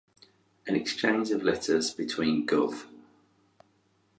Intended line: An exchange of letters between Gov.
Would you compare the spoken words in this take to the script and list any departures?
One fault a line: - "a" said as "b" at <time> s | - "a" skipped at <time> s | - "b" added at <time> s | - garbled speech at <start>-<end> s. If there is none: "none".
none